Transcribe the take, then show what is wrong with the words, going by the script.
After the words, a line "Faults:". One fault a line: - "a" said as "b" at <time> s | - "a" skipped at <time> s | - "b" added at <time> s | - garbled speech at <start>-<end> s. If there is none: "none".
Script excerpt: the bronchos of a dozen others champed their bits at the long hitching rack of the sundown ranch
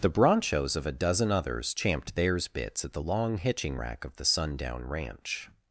the bronchos of a dozen others champed theirs bits at the long hitching rack of the sundown ranch
Faults:
- "their" said as "theirs" at 2.1 s